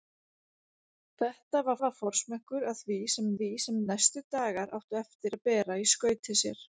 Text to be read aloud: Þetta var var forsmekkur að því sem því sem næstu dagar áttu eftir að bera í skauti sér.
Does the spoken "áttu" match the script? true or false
true